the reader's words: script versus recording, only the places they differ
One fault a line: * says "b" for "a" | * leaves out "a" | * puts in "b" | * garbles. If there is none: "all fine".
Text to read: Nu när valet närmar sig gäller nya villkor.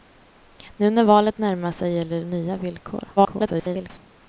* garbles